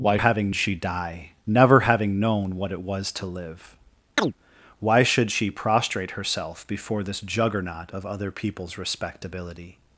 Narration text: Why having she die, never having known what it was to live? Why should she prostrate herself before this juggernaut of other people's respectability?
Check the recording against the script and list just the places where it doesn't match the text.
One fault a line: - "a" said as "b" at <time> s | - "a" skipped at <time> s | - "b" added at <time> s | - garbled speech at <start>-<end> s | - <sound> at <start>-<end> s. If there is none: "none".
- chirp at 4.2-4.3 s